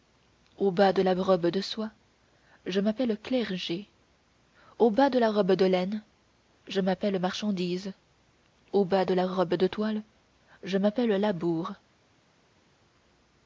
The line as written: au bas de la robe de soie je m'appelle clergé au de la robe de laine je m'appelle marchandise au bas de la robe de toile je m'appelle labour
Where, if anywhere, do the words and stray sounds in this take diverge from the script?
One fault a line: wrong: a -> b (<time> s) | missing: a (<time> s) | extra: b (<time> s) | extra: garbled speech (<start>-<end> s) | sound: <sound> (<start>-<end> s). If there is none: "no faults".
extra: bas (4.9 s)